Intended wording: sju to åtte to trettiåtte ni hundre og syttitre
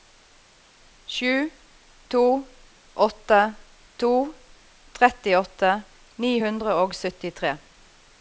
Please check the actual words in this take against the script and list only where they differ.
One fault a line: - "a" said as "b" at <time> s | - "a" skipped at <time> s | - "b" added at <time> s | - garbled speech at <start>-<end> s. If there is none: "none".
none